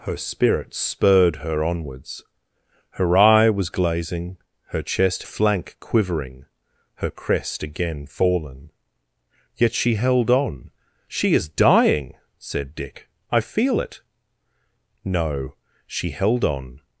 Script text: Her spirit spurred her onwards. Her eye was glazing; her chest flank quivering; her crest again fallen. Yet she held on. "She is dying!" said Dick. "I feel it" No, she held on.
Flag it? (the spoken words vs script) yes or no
no